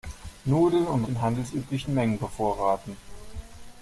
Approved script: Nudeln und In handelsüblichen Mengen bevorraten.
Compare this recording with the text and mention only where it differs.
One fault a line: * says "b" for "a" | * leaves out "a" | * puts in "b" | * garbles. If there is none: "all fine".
all fine